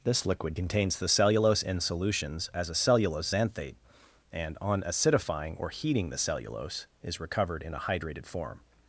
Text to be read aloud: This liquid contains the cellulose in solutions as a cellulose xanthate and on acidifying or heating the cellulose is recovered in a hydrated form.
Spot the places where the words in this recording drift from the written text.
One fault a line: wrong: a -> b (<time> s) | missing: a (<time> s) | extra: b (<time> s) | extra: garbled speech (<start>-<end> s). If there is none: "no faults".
no faults